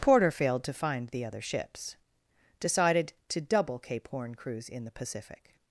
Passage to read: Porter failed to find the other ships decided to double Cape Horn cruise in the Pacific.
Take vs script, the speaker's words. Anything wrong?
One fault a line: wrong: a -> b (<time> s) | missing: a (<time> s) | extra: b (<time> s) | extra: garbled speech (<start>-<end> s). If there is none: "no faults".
no faults